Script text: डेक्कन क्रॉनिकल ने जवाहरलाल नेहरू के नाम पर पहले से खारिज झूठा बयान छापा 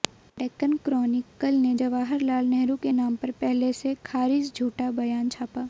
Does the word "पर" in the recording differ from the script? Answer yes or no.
no